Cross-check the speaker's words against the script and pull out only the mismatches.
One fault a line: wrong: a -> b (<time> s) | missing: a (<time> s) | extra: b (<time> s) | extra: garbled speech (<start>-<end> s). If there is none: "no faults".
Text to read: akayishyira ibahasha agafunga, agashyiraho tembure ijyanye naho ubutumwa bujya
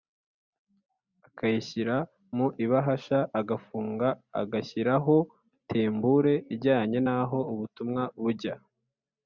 extra: mu (2.4 s)